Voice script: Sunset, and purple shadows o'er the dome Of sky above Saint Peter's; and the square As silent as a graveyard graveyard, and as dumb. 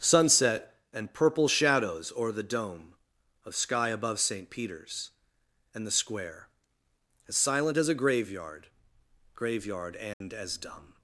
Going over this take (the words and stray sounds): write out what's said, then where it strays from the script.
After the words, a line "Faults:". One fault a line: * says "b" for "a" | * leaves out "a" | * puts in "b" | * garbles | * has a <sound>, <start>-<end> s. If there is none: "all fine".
Sunset, and purple shadows o'er the dome Of sky above Saint Peter's; and the square As silent as a graveyard graveyard, and as dumb.
Faults:
* has a dropout, 10.1-10.2 s